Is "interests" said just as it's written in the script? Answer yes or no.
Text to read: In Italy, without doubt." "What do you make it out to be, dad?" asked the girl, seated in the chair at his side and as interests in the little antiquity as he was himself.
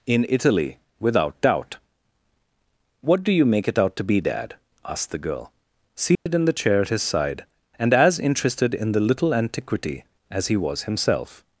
no